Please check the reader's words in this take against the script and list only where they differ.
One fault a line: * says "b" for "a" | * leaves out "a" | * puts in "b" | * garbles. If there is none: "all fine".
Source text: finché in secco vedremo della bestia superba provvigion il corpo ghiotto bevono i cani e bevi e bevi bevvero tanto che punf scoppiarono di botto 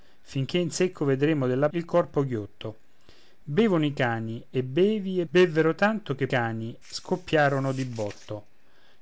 * leaves out "bestia superba provvigion"
* leaves out "bevi"
* says "cani" for "punf"